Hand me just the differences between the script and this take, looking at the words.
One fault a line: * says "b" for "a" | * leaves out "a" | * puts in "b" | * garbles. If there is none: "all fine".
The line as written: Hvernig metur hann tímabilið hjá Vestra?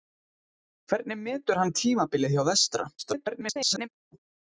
* garbles